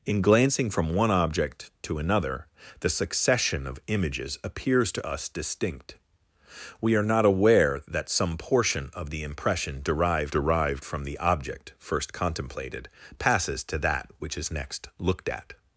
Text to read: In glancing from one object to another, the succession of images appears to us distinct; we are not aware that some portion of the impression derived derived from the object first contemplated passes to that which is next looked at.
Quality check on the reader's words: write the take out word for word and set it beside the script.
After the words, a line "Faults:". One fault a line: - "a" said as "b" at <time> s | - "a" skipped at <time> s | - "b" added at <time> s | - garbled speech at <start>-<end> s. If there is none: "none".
In glancing from one object to another, the succession of images appears to us distinct; we are not aware that some portion of the impression derived derived from the object first contemplated passes to that which is next looked at.
Faults:
none